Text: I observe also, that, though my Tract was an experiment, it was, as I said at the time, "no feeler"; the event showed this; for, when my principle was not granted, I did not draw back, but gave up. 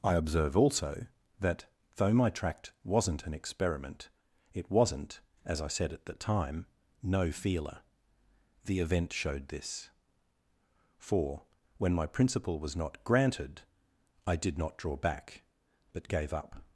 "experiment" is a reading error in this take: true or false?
false